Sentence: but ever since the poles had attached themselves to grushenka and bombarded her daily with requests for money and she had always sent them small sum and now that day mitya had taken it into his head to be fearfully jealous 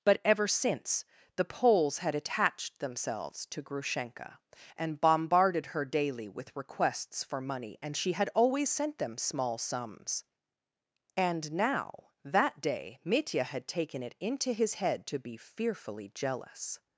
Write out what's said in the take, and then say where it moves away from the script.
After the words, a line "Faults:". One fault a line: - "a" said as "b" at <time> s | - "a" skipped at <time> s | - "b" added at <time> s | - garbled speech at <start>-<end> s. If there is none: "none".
but ever since the poles had attached themselves to grushenka and bombarded her daily with requests for money and she had always sent them small sums and now that day mitya had taken it into his head to be fearfully jealous
Faults:
- "sum" said as "sums" at 9.6 s